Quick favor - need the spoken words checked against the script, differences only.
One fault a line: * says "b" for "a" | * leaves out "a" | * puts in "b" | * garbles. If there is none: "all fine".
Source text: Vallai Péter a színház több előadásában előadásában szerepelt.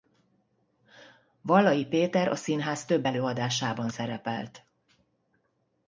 * leaves out "előadásában"